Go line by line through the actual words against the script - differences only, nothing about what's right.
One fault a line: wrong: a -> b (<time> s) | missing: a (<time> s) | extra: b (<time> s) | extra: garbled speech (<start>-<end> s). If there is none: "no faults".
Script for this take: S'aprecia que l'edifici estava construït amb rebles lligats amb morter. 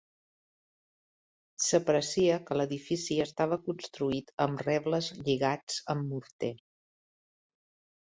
no faults